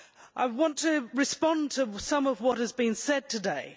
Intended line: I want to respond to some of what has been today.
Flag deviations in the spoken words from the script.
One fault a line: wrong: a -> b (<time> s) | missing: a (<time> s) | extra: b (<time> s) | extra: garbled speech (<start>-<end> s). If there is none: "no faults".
extra: said (2.9 s)